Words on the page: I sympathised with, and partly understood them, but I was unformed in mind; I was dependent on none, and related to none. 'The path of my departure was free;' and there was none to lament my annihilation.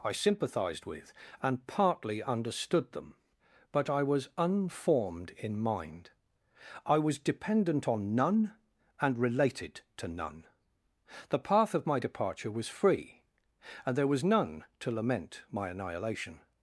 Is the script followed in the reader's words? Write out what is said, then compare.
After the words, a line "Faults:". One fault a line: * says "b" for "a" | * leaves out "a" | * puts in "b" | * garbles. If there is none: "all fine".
I sympathised with, and partly understood them, but I was unformed in mind; I was dependent on none, and related to none. 'The path of my departure was free;' and there was none to lament my annihilation.
Faults:
all fine